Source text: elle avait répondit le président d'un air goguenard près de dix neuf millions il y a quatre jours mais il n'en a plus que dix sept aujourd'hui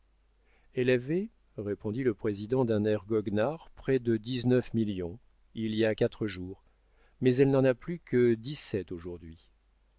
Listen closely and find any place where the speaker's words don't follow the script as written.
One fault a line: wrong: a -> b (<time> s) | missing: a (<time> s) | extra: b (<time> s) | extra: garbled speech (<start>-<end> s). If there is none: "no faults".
wrong: il -> elle (7.3 s)